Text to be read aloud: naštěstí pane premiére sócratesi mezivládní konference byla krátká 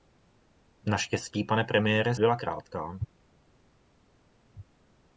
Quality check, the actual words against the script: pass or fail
fail